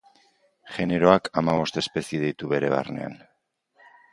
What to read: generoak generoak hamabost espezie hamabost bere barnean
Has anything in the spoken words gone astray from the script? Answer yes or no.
yes